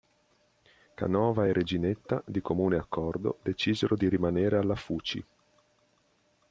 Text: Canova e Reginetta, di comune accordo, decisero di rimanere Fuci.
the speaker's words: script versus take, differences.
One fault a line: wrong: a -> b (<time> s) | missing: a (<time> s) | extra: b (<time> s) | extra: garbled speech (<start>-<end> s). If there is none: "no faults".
extra: alla (4.6 s)